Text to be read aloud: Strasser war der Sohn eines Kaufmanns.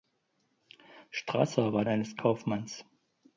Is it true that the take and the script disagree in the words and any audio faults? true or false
true